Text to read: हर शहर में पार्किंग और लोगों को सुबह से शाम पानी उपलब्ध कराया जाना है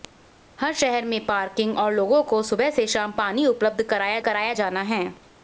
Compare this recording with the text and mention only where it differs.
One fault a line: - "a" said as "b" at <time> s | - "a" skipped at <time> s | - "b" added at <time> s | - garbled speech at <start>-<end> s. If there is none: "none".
- "कराया" added at 4.2 s